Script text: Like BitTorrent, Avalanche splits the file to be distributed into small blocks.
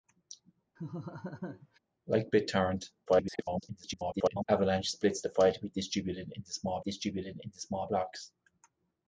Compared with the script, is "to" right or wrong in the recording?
right